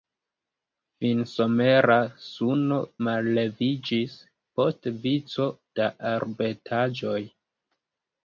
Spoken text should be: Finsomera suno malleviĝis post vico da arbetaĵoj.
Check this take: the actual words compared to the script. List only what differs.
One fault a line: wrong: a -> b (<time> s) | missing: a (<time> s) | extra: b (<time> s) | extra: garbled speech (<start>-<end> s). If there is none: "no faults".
no faults